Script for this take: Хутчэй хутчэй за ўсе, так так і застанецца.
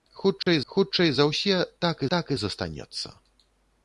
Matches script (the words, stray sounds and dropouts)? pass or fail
fail